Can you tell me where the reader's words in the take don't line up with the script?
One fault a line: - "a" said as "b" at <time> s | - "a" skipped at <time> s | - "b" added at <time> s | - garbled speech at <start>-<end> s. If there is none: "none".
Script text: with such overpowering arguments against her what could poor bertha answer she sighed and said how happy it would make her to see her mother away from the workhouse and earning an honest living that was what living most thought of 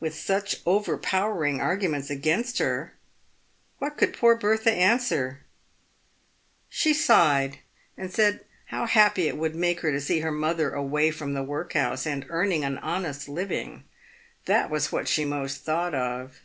- "living" said as "she" at 15.1 s